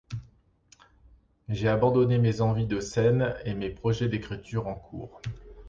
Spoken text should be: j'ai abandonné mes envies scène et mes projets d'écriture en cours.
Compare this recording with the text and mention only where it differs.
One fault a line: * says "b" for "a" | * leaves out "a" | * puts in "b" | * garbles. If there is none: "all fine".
* puts in "de"